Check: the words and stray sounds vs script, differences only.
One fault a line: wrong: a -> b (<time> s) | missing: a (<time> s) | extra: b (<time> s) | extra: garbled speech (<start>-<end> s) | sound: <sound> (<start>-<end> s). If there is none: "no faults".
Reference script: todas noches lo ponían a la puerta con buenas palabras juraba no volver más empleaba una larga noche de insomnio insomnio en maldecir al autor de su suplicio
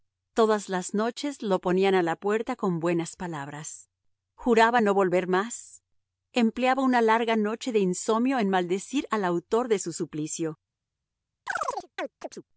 extra: las (0.7 s)
missing: insomnio (8.4 s)
sound: chirp (11.5-12.4 s)